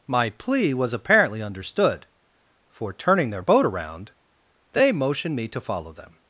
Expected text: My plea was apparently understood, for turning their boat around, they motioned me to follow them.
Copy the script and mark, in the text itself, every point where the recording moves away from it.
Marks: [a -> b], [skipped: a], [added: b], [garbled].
My plea was apparently understood, for turning their boat around, they motioned me to follow them.